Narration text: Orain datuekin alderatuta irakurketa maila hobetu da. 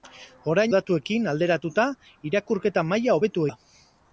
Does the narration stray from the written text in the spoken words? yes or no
no